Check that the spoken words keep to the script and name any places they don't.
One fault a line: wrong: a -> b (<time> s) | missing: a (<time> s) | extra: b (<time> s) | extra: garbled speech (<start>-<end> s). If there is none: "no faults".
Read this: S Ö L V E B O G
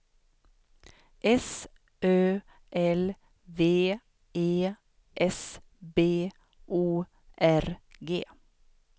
extra: S (5.2 s)
extra: R (7.4 s)